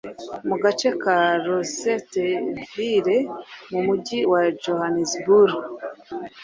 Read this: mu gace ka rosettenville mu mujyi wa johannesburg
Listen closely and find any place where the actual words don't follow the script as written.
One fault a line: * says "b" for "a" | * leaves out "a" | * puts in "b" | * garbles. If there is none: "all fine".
all fine